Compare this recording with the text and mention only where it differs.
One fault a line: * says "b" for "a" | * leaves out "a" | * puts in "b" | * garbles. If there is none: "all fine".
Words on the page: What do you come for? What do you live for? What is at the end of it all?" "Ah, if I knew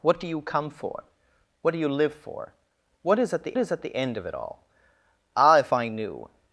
* puts in "is at the"